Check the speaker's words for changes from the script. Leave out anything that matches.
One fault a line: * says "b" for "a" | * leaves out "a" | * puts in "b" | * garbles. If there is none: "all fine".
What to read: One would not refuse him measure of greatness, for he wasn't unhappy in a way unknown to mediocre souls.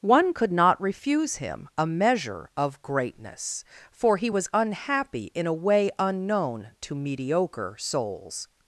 * says "could" for "would"
* puts in "a"
* says "was" for "wasn't"